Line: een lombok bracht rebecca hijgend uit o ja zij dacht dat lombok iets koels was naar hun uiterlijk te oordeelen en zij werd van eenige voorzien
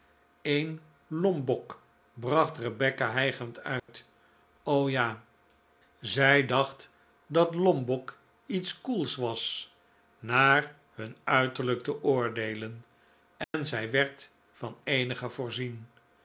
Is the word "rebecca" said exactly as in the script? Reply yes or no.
yes